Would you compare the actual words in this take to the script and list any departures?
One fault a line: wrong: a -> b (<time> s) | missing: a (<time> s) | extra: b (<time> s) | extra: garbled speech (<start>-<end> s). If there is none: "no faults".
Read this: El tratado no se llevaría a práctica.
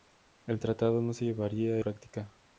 no faults